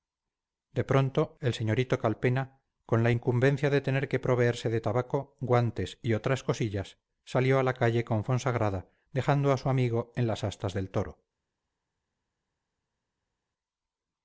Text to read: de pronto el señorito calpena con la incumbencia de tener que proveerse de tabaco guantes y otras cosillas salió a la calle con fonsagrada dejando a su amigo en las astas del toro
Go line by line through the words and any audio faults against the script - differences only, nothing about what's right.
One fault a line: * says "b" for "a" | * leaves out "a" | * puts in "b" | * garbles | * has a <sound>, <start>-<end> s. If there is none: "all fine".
all fine